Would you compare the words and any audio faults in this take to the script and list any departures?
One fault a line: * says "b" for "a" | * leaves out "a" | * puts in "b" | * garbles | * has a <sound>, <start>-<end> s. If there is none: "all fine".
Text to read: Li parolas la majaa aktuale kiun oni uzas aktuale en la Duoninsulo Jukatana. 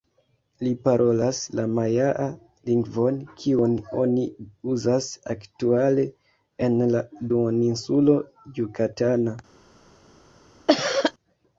* says "lingvon" for "aktuale"
* has a cough, 10.7-11.1 s